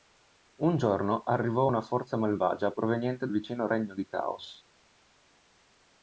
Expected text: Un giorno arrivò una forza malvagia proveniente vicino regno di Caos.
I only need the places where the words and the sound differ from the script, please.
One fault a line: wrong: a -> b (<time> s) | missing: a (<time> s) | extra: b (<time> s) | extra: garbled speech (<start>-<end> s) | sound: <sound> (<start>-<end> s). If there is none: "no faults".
no faults